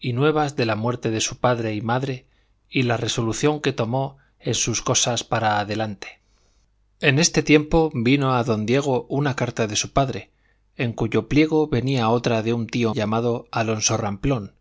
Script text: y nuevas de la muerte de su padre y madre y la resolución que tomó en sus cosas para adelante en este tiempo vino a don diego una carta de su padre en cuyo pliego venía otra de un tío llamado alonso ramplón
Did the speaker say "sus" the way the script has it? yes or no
yes